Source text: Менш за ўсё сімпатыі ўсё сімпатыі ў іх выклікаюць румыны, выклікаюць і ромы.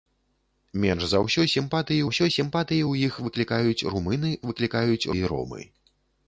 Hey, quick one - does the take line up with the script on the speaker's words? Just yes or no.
yes